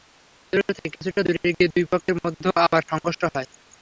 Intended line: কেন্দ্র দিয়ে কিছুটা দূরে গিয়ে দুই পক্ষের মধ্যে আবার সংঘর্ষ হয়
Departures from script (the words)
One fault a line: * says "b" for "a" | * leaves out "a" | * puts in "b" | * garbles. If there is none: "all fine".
* says "থেকে" for "দিয়ে"